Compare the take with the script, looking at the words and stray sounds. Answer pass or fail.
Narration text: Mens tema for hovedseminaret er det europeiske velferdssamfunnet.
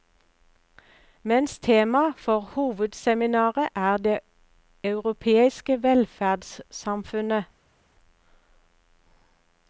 pass